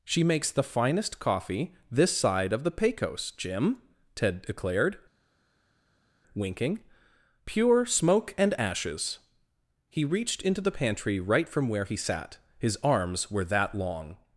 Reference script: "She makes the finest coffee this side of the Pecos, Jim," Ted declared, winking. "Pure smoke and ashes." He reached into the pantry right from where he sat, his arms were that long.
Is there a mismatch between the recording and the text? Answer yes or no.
no